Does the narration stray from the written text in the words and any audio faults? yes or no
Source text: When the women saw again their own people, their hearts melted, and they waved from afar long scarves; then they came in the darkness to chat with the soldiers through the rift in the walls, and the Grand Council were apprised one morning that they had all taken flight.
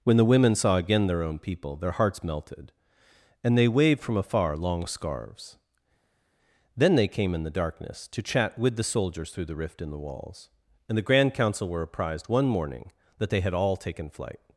no